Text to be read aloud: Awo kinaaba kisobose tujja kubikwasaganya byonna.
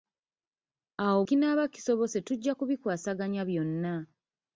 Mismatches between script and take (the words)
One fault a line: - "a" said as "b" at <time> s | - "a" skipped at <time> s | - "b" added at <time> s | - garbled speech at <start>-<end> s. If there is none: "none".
none